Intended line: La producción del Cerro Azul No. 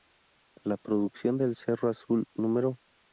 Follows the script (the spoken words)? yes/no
yes